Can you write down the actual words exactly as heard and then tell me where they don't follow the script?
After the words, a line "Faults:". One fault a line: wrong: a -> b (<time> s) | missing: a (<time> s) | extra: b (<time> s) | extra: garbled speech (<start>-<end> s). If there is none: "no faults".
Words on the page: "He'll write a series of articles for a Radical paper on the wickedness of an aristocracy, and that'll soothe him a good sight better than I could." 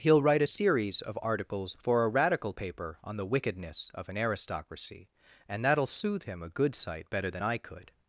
"He'll write a series of articles for a Radical paper on the wickedness of an aristocracy, and that'll soothe him a good sight better than I could."
Faults:
no faults